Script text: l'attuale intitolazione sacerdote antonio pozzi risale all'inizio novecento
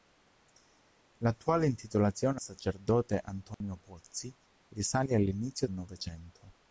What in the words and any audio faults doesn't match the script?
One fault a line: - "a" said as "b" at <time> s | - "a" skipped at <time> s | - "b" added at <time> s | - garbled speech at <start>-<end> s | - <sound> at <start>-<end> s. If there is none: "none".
- dropout at 3.5-3.6 s